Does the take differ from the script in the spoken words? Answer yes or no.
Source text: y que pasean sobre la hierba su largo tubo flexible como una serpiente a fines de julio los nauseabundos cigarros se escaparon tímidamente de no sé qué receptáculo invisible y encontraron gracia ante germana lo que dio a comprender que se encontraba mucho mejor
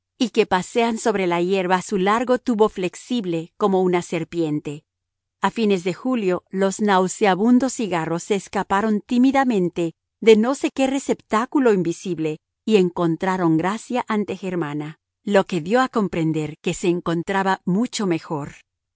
no